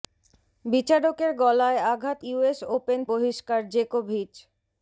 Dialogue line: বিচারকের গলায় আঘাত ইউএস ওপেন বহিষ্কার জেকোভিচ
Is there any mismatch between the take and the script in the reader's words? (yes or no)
no